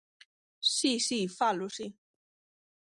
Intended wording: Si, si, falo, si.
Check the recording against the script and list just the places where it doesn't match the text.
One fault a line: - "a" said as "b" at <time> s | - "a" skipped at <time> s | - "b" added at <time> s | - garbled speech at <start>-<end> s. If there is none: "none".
none